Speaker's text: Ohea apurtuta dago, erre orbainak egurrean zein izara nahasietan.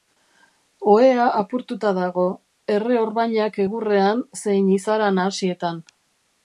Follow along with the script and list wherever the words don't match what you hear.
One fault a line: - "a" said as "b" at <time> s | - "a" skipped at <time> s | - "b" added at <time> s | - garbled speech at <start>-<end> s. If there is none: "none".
none